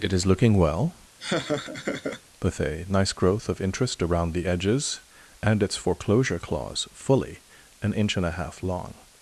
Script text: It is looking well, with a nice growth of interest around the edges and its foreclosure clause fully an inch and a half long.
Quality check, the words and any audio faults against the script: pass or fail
fail